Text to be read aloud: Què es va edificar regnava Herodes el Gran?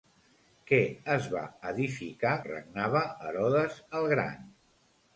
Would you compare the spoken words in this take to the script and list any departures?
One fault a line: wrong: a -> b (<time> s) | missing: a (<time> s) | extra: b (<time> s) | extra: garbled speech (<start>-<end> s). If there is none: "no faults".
no faults